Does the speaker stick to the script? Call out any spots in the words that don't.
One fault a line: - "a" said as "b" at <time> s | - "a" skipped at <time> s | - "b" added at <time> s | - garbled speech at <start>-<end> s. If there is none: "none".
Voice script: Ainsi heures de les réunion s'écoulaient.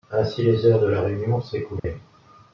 - "les" added at 0.4 s
- "les" said as "la" at 0.9 s